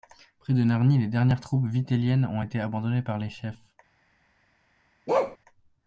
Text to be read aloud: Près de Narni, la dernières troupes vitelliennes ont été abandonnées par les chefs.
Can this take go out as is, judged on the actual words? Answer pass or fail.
fail